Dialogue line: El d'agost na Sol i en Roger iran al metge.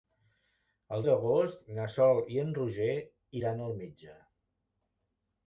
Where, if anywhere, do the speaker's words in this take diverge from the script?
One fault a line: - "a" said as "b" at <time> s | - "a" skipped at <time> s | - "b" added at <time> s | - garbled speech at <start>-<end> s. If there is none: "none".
none